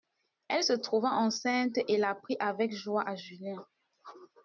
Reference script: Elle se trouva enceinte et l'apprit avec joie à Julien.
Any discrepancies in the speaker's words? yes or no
no